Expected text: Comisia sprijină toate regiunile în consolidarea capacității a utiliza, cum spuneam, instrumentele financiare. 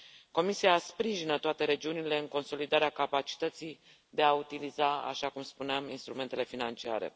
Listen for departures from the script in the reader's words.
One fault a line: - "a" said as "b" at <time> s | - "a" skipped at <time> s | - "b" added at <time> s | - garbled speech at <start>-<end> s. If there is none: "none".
- "de" added at 4.1 s
- "așa" added at 5.0 s